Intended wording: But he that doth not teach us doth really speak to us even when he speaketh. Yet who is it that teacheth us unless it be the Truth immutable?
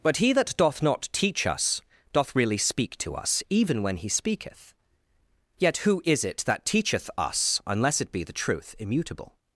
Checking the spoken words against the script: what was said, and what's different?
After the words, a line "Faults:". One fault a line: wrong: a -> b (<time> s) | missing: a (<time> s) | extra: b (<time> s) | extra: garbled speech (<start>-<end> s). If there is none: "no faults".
But he that doth not teach us doth really speak to us even when he speaketh. Yet who is it that teacheth us unless it be the Truth immutable?
Faults:
no faults